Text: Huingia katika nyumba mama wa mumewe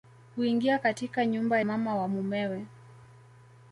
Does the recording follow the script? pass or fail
pass